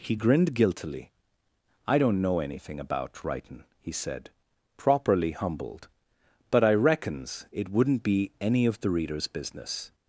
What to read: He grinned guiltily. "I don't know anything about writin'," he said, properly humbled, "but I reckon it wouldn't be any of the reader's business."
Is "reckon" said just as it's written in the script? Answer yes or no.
no